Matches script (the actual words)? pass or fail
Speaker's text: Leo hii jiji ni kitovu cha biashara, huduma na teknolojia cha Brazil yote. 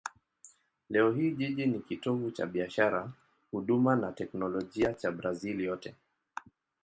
pass